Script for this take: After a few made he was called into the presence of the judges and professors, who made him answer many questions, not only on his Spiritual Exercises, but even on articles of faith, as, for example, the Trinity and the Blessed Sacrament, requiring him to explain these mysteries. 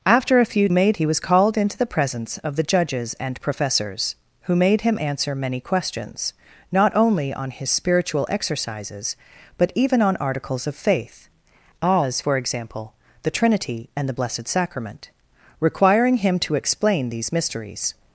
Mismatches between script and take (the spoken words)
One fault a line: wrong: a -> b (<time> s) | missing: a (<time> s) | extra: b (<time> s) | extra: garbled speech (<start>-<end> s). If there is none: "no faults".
no faults